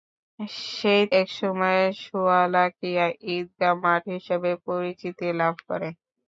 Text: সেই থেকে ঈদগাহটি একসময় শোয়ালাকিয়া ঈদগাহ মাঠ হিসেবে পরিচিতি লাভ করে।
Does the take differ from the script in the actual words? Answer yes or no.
yes